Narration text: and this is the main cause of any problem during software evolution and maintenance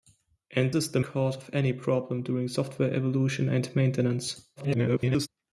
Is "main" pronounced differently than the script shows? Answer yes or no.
yes